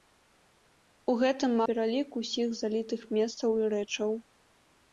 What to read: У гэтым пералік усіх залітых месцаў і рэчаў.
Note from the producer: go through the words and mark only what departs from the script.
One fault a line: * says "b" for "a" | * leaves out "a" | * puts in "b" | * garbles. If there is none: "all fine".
all fine